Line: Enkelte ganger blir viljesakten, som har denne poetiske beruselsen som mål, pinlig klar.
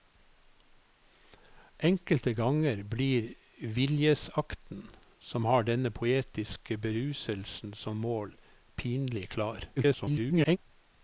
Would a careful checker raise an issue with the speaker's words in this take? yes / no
yes